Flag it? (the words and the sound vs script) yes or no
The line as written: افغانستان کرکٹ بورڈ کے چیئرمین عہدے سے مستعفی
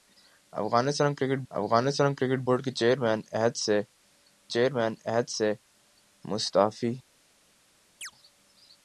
yes